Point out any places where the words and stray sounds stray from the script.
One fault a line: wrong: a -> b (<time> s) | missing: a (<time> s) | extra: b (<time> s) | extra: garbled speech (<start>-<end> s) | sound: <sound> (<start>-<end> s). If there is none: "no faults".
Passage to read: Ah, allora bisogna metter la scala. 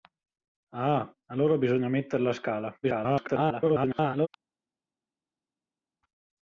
extra: garbled speech (2.8-4.3 s)